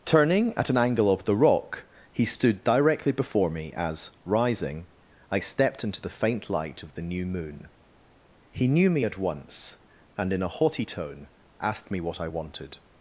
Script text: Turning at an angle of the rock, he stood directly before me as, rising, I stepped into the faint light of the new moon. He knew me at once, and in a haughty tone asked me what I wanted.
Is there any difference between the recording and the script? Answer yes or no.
no